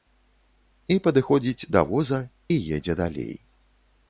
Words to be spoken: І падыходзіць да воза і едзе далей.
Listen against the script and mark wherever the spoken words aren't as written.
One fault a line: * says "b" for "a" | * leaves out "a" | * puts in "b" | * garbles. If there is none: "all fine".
all fine